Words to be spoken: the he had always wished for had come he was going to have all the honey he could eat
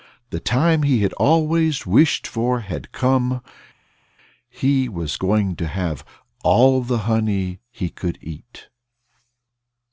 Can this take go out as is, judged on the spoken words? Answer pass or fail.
fail